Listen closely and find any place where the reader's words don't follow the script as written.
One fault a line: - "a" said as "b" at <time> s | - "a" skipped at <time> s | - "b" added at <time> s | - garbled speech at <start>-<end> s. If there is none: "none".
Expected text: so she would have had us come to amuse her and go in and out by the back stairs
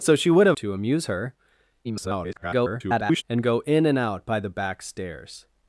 - "had us come" skipped at 0.6 s
- garbled speech at 1.8-3.2 s